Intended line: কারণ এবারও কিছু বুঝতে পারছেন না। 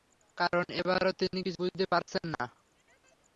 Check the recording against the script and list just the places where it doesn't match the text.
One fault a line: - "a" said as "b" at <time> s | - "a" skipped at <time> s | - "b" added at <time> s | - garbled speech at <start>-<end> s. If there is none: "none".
- "তিনি" added at 1.2 s